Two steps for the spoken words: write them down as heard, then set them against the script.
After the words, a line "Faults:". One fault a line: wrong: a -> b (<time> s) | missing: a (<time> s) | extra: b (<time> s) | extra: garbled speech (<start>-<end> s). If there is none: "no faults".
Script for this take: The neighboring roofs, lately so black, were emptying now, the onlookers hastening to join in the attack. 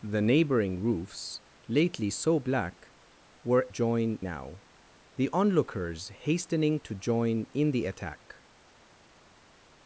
The neighboring roofs, lately so black, were join now, the onlookers hastening to join in the attack.
Faults:
wrong: emptying -> join (3.7 s)